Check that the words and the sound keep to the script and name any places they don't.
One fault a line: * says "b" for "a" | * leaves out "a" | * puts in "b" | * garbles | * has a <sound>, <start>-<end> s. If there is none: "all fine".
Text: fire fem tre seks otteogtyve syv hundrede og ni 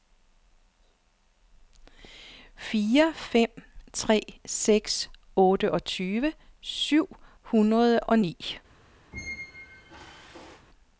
* has a squeak, 9.1-10.7 s